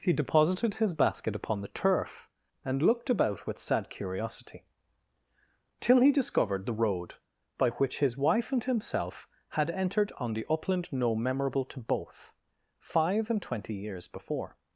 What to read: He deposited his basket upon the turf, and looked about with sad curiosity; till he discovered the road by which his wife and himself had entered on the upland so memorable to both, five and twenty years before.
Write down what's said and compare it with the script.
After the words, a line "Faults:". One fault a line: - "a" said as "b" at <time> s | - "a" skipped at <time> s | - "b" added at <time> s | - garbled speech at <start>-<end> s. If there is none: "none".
He deposited his basket upon the turf, and looked about with sad curiosity; till he discovered the road by which his wife and himself had entered on the upland no memorable to both, five and twenty years before.
Faults:
- "so" said as "no" at 10.9 s